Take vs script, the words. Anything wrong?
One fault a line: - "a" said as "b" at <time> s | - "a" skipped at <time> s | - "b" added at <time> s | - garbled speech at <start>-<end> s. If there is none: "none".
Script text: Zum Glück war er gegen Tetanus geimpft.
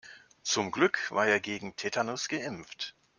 none